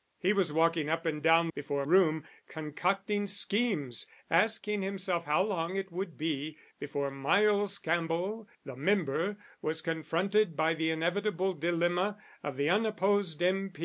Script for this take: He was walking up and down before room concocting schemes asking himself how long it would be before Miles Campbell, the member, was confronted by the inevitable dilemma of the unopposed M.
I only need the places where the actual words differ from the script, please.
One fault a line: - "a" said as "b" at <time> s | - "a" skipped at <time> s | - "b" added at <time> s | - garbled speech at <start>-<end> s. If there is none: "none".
none